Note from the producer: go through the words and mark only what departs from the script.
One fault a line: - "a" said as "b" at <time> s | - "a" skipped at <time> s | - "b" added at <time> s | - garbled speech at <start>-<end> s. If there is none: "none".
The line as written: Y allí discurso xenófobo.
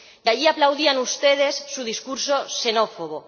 - "aplaudían ustedes su" added at 0.5 s